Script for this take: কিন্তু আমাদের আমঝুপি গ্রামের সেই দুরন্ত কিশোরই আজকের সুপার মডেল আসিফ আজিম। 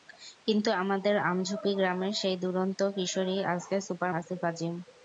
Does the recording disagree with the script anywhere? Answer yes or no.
yes